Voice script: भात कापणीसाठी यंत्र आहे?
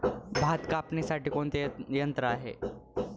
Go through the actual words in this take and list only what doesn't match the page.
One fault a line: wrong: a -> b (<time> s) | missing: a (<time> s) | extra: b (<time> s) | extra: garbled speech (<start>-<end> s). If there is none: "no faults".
extra: कोणते (1.3 s)